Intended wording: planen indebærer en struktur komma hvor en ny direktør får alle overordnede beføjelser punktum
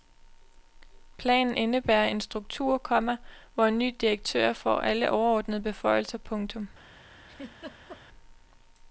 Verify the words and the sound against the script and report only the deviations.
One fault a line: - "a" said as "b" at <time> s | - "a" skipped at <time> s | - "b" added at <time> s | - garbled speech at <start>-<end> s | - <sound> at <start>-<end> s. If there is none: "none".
- laugh at 7.3-8.0 s